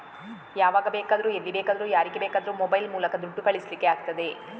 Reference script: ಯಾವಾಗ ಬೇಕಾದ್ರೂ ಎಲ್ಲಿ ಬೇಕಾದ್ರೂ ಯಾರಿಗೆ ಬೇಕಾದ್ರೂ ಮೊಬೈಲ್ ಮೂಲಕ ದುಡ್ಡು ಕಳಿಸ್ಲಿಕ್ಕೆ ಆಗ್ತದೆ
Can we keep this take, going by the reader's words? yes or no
yes